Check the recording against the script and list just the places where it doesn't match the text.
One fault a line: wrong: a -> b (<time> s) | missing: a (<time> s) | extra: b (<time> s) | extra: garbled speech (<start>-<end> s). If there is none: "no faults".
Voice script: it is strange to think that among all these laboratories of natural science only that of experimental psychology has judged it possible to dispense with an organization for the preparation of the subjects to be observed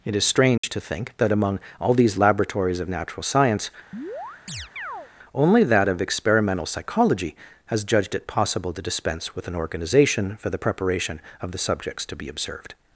no faults